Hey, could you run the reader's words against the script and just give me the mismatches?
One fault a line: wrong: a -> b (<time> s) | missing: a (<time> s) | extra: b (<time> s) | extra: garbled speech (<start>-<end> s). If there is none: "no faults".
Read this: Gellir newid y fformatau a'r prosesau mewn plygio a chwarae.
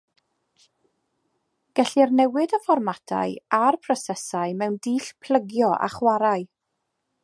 extra: dull (4.9 s)